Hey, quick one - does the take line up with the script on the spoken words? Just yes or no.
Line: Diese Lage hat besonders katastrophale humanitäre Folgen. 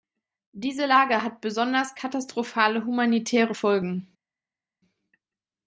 yes